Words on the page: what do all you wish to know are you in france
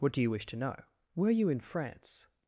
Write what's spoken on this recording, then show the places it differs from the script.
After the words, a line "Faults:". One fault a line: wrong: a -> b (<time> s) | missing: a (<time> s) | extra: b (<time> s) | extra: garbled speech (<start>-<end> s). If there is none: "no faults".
what do you wish to know were you in france
Faults:
missing: all (0.2 s)
wrong: are -> were (1.2 s)